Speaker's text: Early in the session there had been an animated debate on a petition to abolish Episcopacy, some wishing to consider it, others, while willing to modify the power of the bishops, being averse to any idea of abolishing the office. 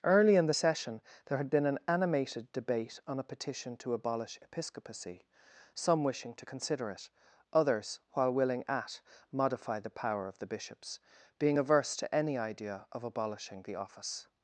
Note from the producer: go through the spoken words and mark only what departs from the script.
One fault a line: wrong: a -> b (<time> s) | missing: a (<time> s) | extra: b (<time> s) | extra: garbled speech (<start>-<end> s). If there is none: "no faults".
wrong: to -> at (8.7 s)